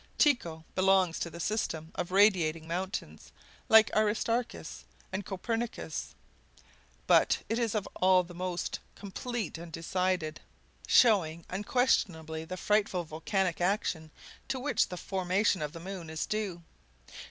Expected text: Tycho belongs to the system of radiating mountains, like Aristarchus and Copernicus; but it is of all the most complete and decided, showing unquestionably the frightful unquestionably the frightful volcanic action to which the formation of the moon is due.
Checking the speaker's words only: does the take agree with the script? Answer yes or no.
no